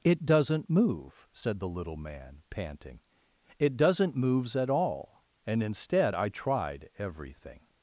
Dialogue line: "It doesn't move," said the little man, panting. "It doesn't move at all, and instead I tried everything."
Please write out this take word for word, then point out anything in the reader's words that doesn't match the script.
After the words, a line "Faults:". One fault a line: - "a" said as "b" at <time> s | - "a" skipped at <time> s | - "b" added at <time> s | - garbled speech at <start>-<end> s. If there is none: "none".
"It doesn't move," said the little man, panting. "It doesn't moves at all, and instead I tried everything."
Faults:
- "move" said as "moves" at 4.2 s